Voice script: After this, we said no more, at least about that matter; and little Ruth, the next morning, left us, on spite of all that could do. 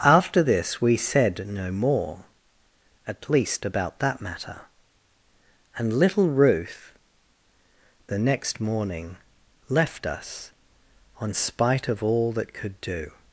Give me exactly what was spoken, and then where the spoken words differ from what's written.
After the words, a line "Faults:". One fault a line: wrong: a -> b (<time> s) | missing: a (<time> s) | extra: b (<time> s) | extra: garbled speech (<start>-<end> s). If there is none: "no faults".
After this, we said no more, at least about that matter; and little Ruth, the next morning, left us, on spite of all that could do.
Faults:
no faults